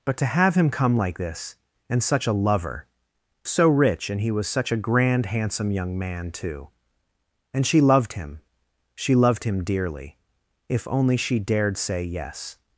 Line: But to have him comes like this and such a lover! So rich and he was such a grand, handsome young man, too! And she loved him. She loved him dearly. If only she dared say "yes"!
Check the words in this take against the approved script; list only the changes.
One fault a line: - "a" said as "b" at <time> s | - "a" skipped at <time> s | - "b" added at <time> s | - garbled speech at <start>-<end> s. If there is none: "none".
- "comes" said as "come" at 0.7 s